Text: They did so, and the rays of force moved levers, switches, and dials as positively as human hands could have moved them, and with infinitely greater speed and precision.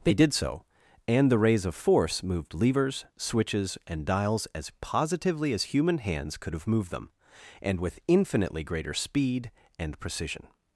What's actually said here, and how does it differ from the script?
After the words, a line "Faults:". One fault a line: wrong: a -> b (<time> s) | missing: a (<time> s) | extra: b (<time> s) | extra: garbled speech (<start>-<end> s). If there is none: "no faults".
They did so, and the rays of force moved levers, switches, and dials as positively as human hands could have moved them, and with infinitely greater speed and precision.
Faults:
no faults